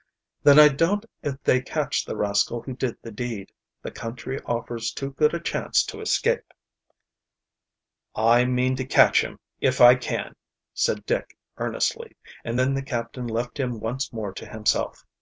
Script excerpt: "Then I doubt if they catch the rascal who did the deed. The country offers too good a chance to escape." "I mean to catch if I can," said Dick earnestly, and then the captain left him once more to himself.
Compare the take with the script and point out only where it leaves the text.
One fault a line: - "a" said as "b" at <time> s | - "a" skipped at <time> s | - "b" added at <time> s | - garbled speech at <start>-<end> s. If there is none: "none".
- "him" added at 9.2 s